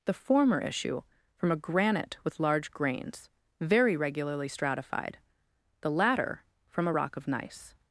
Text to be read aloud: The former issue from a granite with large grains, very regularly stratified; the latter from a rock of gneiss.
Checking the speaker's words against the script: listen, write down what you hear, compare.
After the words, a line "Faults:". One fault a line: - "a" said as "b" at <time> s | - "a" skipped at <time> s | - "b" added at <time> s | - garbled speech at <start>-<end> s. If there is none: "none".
The former issue from a granite with large grains, very regularly stratified; the latter from a rock of gneiss.
Faults:
none